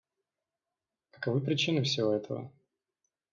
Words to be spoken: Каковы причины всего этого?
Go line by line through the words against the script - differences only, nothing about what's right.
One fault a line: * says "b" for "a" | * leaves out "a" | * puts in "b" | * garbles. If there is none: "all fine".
all fine